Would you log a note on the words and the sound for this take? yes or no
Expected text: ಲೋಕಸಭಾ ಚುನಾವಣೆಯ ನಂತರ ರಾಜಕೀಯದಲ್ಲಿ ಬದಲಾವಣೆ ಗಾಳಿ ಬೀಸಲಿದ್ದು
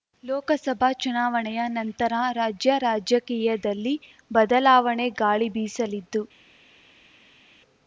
yes